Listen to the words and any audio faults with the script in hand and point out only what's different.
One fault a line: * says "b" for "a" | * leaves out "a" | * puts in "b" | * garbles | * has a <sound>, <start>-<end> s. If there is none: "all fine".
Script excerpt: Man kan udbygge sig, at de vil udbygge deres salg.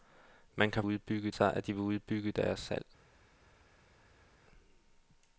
all fine